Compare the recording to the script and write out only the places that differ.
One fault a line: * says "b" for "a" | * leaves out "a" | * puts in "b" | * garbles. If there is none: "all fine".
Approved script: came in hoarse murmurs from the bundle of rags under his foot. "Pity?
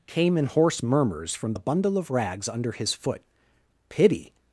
all fine